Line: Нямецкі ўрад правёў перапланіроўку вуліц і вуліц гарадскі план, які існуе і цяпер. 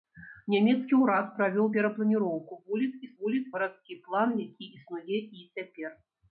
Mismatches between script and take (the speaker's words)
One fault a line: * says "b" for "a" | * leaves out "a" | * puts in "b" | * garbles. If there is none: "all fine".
all fine